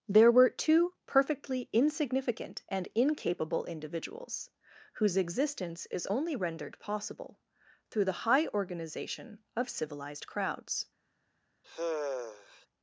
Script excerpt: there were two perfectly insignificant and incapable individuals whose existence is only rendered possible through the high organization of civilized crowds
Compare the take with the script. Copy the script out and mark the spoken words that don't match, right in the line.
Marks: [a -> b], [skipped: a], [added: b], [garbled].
there were two perfectly insignificant and incapable individuals whose existence is only rendered possible through the high organization of civilized crowds